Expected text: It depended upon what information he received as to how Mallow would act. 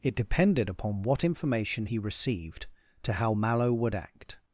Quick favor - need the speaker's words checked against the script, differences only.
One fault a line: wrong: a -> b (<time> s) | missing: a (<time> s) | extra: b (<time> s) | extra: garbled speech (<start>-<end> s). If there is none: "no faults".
missing: as (2.7 s)